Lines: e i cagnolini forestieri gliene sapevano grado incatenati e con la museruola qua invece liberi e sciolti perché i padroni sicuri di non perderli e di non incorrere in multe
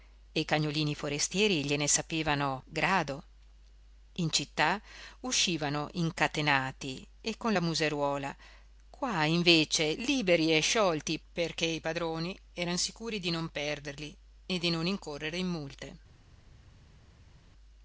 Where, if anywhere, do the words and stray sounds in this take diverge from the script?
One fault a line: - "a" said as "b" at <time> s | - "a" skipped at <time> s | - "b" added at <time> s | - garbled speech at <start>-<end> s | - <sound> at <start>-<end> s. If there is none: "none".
- "in città uscivano" added at 4.1 s
- "eran" added at 12.5 s